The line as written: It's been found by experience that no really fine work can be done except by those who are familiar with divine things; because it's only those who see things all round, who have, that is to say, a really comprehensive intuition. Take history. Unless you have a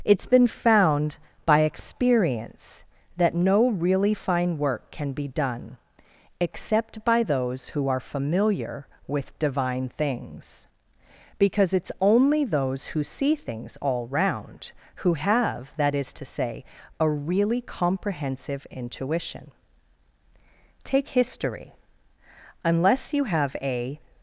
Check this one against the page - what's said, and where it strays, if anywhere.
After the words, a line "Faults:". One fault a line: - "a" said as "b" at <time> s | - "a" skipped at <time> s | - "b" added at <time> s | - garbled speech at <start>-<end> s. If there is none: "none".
It's been found by experience that no really fine work can be done except by those who are familiar with divine things; because it's only those who see things all round, who have, that is to say, a really comprehensive intuition. Take history. Unless you have a
Faults:
none